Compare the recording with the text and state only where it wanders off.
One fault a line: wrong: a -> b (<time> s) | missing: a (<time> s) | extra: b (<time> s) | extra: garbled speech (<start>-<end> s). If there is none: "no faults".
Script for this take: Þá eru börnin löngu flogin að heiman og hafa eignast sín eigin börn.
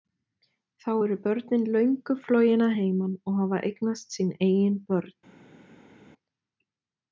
no faults